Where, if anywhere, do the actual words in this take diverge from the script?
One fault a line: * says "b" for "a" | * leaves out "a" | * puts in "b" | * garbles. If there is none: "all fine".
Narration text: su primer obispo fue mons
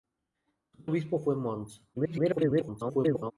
* leaves out "primer"
* garbles